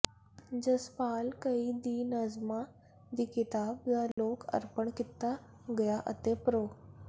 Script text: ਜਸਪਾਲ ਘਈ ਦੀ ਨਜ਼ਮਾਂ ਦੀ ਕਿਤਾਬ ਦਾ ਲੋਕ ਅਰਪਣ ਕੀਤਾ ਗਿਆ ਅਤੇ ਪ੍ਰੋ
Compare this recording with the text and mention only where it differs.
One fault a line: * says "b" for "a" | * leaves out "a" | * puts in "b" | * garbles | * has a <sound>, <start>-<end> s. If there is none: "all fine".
* has a dropout, 4.1-4.2 s